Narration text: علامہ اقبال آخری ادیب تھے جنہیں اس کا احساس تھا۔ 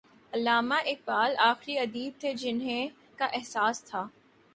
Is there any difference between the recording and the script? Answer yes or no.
yes